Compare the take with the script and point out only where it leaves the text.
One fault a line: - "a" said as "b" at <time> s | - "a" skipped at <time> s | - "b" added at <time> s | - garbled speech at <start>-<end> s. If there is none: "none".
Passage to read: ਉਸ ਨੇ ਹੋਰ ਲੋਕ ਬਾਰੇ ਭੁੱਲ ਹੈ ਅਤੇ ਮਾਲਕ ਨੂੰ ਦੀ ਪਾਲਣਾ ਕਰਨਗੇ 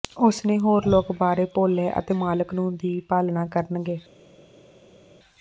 none